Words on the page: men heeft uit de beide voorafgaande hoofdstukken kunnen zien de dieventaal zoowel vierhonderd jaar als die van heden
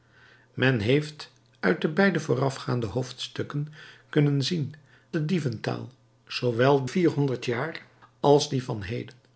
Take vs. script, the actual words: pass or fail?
pass